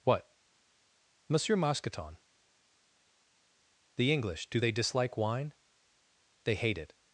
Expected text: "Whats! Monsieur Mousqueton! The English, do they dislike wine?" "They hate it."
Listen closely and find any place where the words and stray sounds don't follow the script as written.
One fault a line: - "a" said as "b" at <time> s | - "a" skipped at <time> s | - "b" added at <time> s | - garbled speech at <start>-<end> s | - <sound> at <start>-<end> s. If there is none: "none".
- "Whats" said as "What" at 0.0 s